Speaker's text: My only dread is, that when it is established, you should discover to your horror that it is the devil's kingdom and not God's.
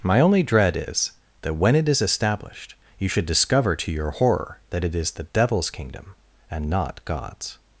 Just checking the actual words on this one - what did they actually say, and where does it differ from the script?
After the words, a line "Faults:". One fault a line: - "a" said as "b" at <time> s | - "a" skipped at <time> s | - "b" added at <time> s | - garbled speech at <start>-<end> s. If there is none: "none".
My only dread is, that when it is established, you should discover to your horror that it is the devil's kingdom and not God's.
Faults:
none